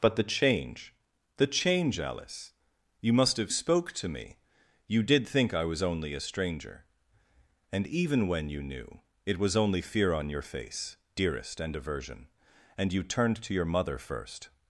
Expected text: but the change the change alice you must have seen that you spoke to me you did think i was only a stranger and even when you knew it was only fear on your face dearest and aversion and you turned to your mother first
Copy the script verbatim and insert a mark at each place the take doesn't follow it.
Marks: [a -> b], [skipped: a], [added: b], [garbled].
but the change the change alice you must have [skipped: seen that you] spoke to me you did think i was only a stranger and even when you knew it was only fear on your face dearest and aversion and you turned to your mother first